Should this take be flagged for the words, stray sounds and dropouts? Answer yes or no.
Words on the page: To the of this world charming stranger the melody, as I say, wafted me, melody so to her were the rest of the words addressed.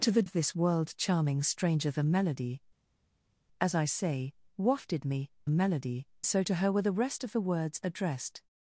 no